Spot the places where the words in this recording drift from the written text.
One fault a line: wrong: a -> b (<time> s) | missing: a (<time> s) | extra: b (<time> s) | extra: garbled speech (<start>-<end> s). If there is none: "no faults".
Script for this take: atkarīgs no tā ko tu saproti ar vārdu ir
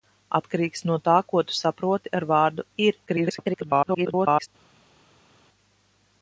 extra: garbled speech (3.1-4.5 s)